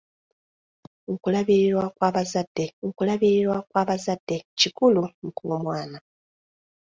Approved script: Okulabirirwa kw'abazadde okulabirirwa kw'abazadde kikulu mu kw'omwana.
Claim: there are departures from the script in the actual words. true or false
false